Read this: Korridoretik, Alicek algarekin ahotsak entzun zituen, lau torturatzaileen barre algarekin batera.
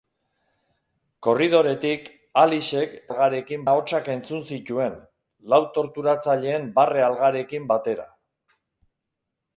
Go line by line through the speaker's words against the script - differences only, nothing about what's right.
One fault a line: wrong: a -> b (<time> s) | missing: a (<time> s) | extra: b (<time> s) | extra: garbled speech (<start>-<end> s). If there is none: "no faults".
no faults